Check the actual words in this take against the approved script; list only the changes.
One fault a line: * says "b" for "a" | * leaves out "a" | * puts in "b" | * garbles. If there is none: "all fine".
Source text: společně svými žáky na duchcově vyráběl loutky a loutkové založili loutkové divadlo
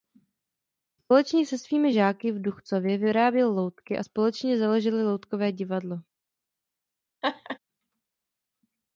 * puts in "se"
* says "v" for "na"
* says "společně" for "loutkové"